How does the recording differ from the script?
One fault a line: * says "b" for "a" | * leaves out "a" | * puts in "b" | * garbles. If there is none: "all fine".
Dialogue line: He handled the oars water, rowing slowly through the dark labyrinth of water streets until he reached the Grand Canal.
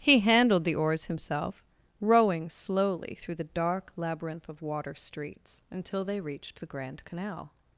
* says "himself" for "water"
* says "they" for "he"